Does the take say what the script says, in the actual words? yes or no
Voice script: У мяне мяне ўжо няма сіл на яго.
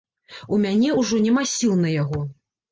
no